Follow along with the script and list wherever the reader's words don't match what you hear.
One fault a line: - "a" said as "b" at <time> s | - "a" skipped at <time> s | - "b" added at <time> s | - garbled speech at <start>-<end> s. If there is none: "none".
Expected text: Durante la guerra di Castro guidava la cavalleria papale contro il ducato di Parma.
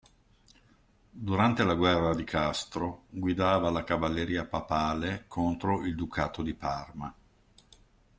none